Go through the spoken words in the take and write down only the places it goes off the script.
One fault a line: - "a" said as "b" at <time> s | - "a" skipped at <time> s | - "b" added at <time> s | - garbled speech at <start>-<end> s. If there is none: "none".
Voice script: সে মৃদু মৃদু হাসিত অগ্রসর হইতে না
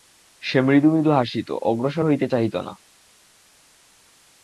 - "চাহিত" added at 2.3 s